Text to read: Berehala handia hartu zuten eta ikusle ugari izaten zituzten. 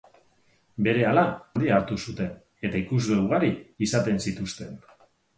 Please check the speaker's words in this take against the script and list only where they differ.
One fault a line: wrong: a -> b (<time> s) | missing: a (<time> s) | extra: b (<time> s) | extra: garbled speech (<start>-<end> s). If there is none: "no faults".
no faults